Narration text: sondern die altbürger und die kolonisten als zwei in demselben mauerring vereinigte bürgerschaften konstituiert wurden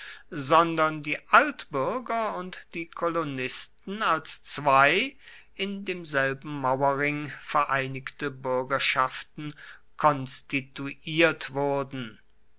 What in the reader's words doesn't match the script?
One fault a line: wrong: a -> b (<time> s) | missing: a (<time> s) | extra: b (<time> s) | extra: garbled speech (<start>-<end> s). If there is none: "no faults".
no faults